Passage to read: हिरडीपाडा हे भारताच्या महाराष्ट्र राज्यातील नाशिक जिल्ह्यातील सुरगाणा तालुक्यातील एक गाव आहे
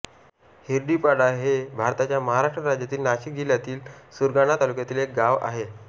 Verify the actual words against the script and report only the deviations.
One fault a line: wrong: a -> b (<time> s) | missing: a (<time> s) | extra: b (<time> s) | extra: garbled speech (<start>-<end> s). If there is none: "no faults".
no faults